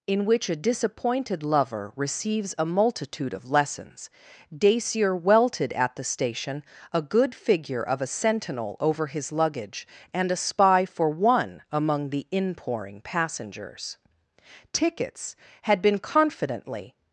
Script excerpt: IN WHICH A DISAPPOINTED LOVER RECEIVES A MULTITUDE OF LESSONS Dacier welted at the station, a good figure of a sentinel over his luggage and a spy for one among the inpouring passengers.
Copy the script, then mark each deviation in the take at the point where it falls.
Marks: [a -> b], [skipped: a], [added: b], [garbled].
IN WHICH A DISAPPOINTED LOVER RECEIVES A MULTITUDE OF LESSONS Dacier welted at the station, a good figure of a sentinel over his luggage and a spy for one among the inpouring passengers. [added: Tickets had been confidently]